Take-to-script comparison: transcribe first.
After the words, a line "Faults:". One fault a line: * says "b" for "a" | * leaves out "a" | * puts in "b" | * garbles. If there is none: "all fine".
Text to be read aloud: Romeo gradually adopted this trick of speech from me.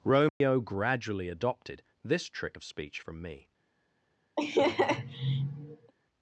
Romeo gradually adopted this trick of speech from me.
Faults:
all fine